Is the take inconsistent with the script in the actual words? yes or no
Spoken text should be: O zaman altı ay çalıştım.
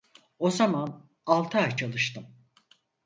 no